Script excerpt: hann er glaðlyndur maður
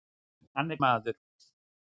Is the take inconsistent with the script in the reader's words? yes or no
yes